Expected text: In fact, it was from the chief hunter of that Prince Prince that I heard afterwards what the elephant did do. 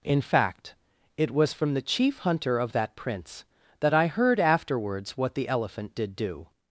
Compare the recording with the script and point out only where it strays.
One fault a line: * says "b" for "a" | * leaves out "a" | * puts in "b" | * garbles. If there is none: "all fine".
* leaves out "Prince"